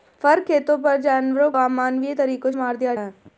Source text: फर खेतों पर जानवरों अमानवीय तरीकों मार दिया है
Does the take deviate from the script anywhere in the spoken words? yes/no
no